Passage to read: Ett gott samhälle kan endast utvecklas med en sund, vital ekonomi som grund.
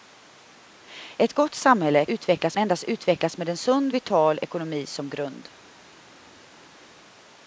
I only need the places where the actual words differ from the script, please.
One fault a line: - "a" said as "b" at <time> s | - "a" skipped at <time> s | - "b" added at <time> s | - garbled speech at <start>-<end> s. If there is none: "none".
- "kan" said as "utvecklas" at 2.0 s